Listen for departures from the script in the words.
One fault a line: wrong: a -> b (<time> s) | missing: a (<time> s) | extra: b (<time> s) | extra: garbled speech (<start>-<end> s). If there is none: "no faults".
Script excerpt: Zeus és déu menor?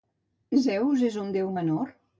extra: un (1.1 s)